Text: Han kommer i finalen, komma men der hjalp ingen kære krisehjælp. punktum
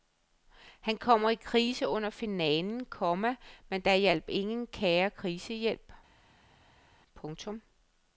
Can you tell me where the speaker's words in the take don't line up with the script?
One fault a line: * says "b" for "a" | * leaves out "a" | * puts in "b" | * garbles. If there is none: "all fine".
* puts in "krise under"